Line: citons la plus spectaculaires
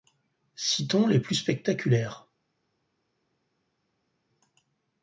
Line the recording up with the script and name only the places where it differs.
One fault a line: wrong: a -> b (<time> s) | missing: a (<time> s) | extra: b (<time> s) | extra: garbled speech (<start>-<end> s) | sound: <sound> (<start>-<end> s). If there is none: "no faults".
wrong: la -> les (1.1 s)